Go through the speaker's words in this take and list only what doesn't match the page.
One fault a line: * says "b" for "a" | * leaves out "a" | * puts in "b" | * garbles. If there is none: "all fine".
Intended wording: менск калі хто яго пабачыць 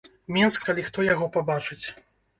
all fine